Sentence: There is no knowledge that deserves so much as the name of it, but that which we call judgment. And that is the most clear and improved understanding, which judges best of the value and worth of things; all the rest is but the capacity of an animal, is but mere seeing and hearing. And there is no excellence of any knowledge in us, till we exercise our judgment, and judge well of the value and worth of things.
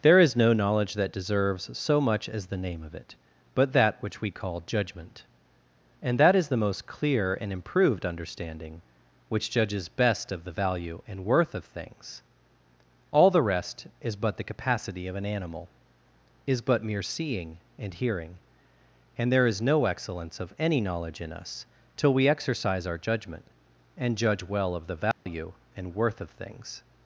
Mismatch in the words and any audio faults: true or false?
true